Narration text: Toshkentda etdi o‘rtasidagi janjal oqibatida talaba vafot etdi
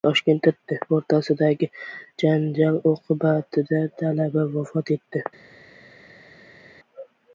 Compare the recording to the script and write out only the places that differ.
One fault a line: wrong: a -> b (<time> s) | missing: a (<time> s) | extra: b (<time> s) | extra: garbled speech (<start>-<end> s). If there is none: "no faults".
no faults